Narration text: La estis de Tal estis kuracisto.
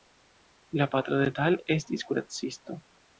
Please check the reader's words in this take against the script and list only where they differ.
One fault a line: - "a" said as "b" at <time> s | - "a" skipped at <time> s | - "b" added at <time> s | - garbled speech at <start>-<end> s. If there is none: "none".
- "estis" said as "patro" at 0.9 s